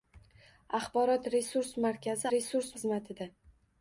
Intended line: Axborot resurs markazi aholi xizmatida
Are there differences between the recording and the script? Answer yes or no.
yes